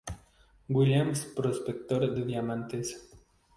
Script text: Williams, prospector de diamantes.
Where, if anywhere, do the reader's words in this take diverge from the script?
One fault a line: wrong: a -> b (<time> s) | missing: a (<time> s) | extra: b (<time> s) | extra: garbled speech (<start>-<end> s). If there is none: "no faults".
no faults